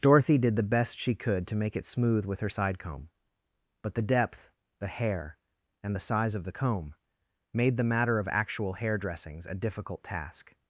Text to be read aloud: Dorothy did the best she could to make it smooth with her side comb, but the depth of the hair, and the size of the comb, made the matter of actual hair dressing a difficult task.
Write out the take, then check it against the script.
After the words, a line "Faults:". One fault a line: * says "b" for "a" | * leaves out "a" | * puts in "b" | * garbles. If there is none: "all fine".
Dorothy did the best she could to make it smooth with her side comb, but the depth the hair, and the size of the comb, made the matter of actual hair dressings a difficult task.
Faults:
* leaves out "of"
* says "dressings" for "dressing"